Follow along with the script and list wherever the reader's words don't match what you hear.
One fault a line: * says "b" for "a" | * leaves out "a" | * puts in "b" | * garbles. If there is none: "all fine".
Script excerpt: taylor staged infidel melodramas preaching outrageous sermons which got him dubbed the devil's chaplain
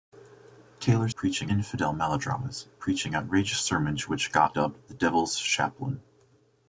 * says "preaching" for "staged"
* leaves out "him"